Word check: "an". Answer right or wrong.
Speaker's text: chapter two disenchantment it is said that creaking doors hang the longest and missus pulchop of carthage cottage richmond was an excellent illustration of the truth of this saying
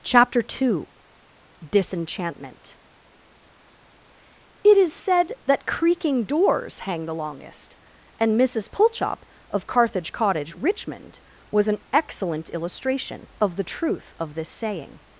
right